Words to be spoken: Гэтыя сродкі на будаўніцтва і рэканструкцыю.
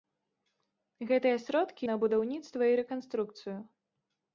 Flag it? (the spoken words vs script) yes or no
no